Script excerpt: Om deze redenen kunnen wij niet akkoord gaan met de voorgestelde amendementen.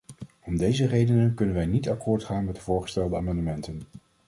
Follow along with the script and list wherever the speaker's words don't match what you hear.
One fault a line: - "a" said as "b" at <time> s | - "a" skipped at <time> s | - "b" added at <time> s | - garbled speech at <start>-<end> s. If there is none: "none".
none